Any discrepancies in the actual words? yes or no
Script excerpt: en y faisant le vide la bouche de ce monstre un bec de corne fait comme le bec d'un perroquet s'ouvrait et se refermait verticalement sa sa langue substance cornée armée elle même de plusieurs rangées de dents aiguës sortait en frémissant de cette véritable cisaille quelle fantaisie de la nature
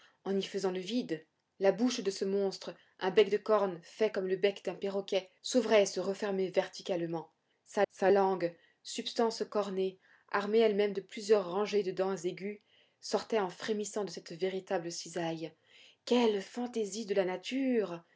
no